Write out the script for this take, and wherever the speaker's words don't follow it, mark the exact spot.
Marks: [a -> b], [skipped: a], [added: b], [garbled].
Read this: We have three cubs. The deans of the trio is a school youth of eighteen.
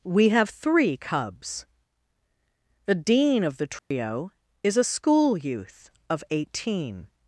We have three cubs. The [deans -> dean] of the trio is a school youth of eighteen.